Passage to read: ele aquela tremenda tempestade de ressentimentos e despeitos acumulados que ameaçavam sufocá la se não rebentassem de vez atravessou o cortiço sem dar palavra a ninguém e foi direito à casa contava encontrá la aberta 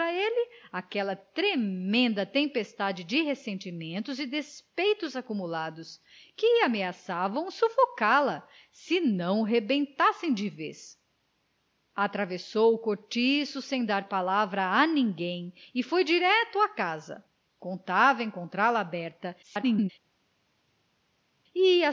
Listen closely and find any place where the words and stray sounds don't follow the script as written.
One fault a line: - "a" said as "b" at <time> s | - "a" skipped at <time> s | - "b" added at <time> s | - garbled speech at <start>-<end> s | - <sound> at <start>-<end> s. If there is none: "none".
- garbled speech at 19.4-19.9 s